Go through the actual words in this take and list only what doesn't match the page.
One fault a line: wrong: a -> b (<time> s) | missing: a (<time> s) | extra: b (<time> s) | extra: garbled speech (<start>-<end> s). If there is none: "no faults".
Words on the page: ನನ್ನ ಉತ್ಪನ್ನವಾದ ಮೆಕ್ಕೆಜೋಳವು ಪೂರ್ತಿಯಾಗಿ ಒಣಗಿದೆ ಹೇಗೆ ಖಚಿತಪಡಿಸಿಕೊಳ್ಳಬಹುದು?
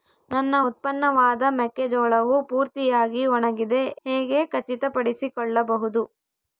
no faults